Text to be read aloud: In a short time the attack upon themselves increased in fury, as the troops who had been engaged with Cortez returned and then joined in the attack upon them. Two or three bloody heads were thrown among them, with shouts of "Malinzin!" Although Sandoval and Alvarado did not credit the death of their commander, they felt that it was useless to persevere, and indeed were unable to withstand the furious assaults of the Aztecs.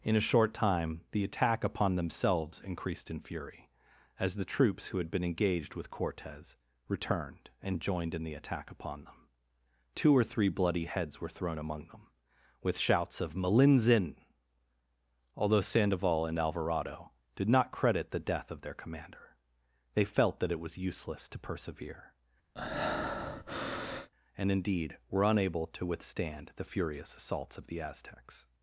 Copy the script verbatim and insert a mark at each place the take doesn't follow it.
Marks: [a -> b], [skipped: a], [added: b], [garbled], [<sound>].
In a short time the attack upon themselves increased in fury, as the troops who had been engaged with Cortez returned and [skipped: then] joined in the attack upon them. Two or three bloody heads were thrown among them, with shouts of "Malinzin!" Although Sandoval and Alvarado did not credit the death of their commander, they felt that it was useless to persevere, [breath] and indeed were unable to withstand the furious assaults of the Aztecs.